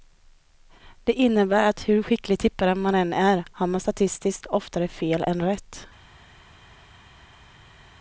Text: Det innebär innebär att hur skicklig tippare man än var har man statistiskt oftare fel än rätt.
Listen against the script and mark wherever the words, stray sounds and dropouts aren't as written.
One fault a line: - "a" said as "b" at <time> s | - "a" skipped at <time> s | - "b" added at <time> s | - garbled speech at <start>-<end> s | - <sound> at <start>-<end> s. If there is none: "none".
- "innebär" skipped at 1.7 s
- "var" said as "är" at 3.1 s